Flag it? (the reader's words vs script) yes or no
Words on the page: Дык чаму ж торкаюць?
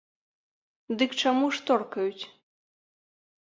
no